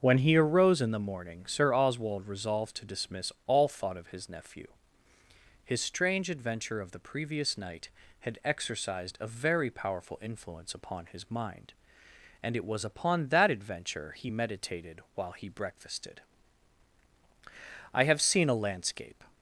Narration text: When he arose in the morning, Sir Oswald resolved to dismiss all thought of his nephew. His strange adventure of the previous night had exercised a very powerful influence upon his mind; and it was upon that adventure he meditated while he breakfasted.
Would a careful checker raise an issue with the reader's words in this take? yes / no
yes